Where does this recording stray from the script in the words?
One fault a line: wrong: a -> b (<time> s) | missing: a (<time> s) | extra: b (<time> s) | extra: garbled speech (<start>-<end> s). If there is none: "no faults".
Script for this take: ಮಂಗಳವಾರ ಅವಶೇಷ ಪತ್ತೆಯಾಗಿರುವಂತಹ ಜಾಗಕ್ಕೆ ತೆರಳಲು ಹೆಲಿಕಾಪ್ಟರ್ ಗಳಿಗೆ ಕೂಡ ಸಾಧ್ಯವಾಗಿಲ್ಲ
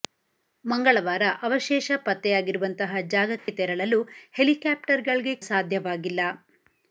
missing: ಕೂಡ (5.3 s)